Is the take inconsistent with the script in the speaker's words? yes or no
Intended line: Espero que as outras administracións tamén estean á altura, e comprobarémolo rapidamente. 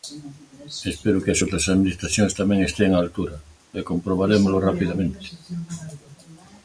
no